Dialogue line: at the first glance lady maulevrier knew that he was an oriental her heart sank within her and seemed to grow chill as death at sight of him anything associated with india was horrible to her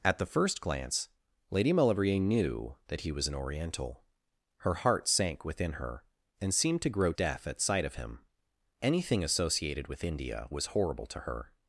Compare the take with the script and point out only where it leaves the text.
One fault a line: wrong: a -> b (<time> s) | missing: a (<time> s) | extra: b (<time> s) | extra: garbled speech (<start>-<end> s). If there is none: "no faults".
missing: chill as (7.1 s)